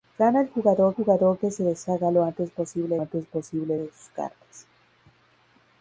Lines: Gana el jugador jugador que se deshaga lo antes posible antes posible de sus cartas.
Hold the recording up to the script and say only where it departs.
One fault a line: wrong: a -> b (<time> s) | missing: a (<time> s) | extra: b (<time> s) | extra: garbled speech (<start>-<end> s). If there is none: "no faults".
no faults